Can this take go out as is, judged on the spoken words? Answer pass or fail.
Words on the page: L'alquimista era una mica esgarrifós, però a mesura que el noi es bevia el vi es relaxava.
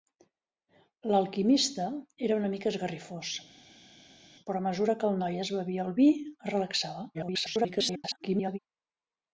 fail